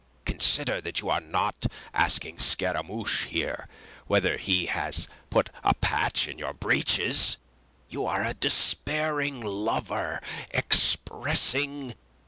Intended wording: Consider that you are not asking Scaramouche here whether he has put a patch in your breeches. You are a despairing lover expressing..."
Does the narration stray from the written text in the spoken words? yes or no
no